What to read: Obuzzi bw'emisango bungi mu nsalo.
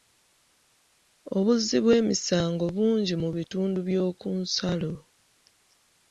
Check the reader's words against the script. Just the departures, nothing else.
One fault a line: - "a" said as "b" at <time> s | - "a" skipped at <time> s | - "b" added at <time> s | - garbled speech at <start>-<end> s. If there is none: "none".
- "bitundu by'oku" added at 3.4 s